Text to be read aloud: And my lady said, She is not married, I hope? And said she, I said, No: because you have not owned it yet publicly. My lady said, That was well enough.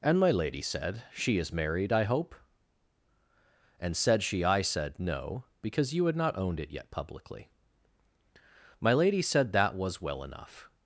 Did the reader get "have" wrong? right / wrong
wrong